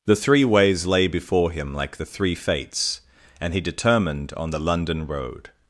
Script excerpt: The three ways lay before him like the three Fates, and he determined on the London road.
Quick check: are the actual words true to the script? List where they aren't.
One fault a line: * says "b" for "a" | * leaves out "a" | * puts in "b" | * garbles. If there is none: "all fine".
all fine